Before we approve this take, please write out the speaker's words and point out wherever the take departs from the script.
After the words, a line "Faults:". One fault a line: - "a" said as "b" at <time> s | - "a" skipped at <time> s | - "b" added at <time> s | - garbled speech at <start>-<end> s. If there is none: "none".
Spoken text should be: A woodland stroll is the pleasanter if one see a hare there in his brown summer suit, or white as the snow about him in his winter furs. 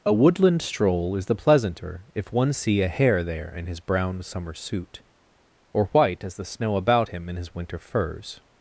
A woodland stroll is the pleasanter if one see a hare there in his brown summer suit, or white as the snow about him in his winter furs.
Faults:
none